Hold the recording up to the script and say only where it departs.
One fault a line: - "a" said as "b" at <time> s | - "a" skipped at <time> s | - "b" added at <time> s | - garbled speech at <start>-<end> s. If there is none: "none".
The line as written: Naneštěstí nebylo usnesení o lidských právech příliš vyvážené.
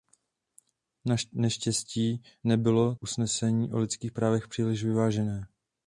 none